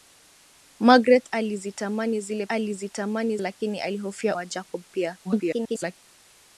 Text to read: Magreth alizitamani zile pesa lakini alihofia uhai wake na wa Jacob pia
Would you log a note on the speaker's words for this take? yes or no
yes